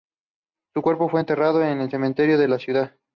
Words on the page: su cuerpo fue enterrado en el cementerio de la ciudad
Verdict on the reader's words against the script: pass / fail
pass